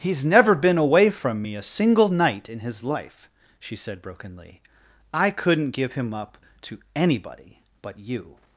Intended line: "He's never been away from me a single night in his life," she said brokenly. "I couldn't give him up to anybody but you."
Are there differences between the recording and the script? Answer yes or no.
no